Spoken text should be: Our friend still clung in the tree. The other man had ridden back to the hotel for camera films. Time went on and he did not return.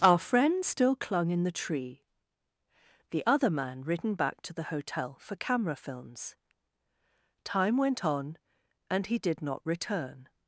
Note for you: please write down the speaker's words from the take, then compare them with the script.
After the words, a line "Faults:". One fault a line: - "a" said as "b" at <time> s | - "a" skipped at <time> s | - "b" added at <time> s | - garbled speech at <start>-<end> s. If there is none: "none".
Our friend still clung in the tree. The other man ridden back to the hotel for camera films. Time went on and he did not return.
Faults:
- "had" skipped at 3.8 s